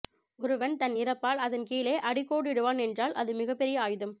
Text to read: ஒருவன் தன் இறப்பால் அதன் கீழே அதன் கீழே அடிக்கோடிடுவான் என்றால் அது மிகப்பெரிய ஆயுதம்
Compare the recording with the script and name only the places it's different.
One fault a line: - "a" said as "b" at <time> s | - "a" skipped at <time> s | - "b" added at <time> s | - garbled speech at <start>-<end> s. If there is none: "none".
- "அதன் கீழே" skipped at 1.9 s